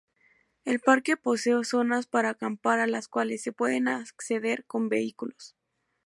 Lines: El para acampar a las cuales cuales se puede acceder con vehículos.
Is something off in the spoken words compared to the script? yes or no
yes